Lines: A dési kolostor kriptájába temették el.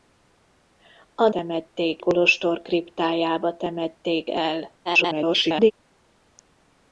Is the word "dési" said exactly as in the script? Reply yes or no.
no